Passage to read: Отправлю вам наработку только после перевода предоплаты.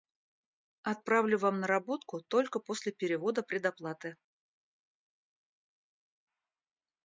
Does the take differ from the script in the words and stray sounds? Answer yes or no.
no